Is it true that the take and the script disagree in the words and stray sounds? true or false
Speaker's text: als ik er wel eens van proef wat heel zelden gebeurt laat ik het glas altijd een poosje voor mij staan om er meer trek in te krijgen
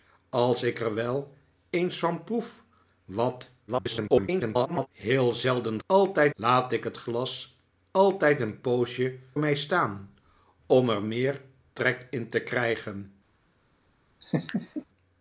true